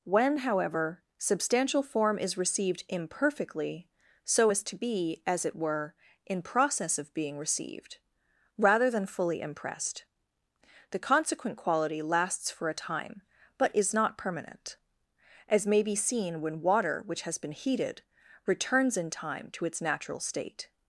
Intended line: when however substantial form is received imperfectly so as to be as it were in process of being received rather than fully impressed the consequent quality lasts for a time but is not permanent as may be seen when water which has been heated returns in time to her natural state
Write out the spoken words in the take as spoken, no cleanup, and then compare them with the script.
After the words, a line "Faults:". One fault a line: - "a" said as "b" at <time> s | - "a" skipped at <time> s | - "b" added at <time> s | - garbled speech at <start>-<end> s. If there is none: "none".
when however substantial form is received imperfectly so as to be as it were in process of being received rather than fully impressed the consequent quality lasts for a time but is not permanent as may be seen when water which has been heated returns in time to its natural state
Faults:
- "her" said as "its" at 19.7 s